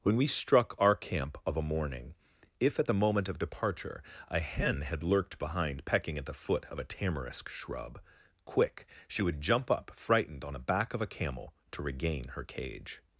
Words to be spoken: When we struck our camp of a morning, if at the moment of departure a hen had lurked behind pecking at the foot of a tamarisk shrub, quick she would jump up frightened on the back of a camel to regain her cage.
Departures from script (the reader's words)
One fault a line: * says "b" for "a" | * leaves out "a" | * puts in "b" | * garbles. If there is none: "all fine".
all fine